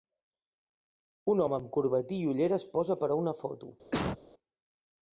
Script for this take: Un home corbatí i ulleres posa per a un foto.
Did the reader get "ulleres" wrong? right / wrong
right